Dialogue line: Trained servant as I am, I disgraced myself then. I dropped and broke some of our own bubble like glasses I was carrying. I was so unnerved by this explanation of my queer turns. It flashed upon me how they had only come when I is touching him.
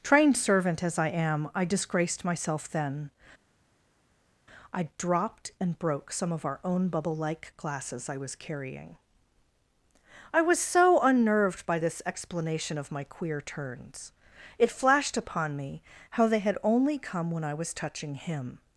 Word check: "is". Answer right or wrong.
wrong